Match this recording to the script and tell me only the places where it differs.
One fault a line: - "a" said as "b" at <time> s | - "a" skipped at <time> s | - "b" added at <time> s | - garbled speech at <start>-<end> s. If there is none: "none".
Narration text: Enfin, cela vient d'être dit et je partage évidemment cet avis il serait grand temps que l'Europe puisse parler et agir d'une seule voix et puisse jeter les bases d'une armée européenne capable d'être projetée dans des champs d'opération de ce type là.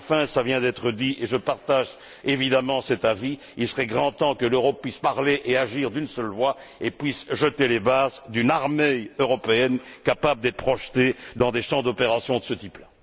none